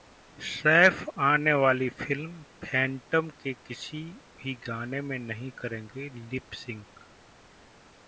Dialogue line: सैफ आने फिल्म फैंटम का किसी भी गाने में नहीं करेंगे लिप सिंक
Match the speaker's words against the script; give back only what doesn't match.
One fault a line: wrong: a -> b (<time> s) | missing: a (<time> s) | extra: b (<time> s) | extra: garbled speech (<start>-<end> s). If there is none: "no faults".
extra: वाली (1.5 s)
wrong: का -> के (3.4 s)